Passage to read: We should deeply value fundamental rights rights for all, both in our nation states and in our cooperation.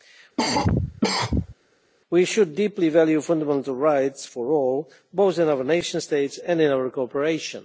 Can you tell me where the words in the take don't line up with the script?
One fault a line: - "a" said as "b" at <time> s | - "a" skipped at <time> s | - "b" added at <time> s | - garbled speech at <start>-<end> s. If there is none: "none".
- "rights" skipped at 4.2 s